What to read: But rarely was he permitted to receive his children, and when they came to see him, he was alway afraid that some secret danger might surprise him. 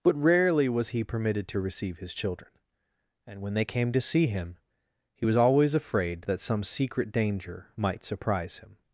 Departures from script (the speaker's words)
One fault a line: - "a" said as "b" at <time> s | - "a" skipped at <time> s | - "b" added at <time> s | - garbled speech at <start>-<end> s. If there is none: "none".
- "alway" said as "always" at 5.4 s